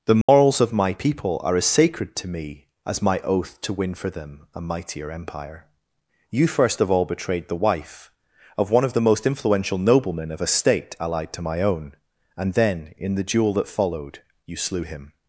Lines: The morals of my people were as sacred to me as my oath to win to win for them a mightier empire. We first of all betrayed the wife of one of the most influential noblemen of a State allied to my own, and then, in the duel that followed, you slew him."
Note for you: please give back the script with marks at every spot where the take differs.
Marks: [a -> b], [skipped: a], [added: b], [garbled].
The morals of my people [were -> are] as sacred to me as my oath to win [skipped: to win] for them a mightier empire. [We -> You] first of all betrayed the wife of one of the most influential noblemen of a State allied to my own, and then, in the duel that followed, you slew him."